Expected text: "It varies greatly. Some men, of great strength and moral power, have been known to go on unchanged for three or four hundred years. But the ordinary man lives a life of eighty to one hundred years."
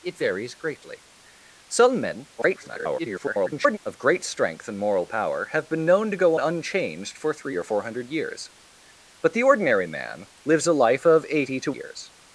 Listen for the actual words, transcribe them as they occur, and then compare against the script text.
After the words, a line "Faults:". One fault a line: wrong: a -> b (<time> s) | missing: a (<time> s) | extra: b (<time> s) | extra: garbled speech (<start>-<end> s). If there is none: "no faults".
"It varies greatly. Some men, [garbled] of great strength and moral power, have been known to go unchanged for three or four hundred years. But the ordinary man lives a life of eighty to years."
Faults:
extra: garbled speech (2.4-3.8 s)
missing: on (6.4 s)
missing: one hundred (11.7 s)